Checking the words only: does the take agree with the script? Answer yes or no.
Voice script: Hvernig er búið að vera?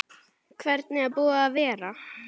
yes